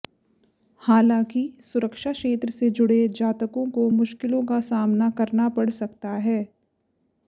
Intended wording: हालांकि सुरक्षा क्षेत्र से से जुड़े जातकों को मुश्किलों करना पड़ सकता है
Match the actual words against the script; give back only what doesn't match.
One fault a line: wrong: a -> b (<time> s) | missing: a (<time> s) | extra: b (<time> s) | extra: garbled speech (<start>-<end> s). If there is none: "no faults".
missing: से (2.7 s)
extra: का सामना (4.5 s)